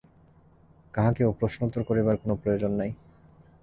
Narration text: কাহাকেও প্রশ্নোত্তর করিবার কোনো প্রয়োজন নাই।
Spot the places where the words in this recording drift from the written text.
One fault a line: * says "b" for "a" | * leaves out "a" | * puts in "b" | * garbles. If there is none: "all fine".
all fine